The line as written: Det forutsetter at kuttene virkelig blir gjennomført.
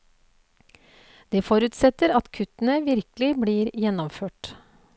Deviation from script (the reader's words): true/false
false